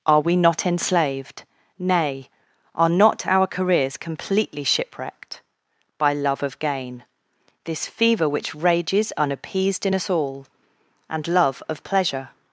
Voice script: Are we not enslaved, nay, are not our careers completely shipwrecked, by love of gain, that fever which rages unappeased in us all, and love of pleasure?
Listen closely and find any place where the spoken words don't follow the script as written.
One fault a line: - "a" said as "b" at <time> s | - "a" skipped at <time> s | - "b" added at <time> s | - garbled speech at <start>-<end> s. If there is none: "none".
- "that" said as "this" at 7.7 s